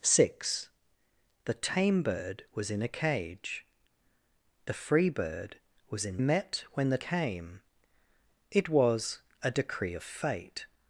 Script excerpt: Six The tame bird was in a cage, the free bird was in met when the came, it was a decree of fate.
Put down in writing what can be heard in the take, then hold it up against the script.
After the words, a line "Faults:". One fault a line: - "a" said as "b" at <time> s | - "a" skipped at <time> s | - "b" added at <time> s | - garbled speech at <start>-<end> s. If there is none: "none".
Six The tame bird was in a cage, the free bird was in met when the came, it was a decree of fate.
Faults:
none